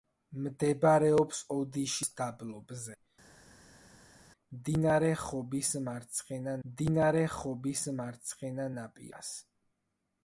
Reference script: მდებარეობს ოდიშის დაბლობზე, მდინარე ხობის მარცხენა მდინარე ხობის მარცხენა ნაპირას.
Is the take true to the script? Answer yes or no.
yes